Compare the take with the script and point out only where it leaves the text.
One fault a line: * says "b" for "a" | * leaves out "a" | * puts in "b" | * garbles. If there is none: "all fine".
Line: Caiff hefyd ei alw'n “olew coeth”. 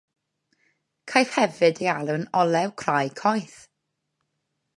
* puts in "crai"